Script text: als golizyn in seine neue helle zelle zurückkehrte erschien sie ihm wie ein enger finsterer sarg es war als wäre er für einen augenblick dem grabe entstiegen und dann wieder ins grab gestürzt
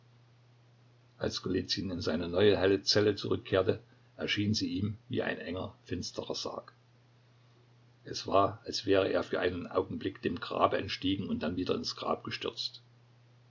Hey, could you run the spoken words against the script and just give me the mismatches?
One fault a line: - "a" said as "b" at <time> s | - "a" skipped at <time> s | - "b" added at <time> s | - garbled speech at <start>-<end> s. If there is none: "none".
none